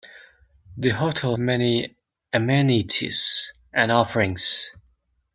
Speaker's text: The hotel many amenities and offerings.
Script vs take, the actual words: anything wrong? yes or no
no